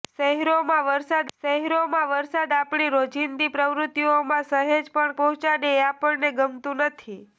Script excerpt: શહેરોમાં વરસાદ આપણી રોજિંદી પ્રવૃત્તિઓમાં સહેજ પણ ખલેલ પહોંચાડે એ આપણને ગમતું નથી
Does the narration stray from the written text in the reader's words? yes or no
yes